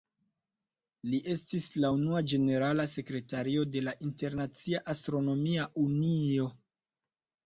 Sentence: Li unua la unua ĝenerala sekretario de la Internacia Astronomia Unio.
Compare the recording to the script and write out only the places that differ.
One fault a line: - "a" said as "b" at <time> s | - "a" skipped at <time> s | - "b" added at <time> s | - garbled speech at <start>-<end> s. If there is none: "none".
- "unua" said as "estis" at 1.3 s